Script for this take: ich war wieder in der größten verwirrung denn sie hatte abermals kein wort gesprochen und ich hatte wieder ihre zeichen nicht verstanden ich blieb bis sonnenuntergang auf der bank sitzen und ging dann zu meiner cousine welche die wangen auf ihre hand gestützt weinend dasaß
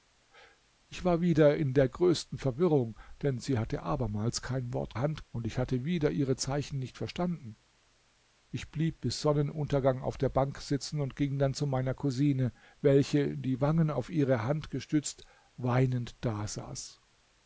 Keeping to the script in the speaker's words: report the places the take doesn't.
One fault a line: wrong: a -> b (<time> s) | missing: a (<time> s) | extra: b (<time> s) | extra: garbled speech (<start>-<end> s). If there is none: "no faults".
wrong: gesprochen -> hand (5.0 s)